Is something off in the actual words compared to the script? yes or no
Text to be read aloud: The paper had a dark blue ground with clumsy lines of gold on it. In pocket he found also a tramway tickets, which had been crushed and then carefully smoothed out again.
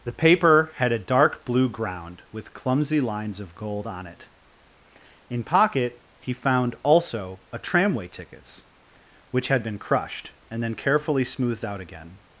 no